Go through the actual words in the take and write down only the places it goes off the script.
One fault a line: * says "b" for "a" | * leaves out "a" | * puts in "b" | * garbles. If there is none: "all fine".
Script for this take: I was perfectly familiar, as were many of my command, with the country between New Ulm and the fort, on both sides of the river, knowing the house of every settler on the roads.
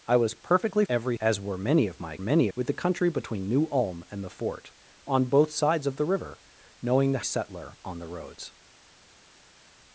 * says "every" for "familiar"
* says "many" for "command"
* leaves out "house of every"